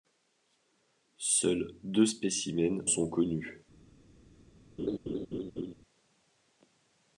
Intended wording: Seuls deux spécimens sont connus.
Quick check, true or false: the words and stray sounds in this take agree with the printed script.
false